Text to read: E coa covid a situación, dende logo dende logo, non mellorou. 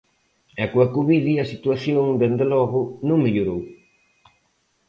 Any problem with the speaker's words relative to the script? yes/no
yes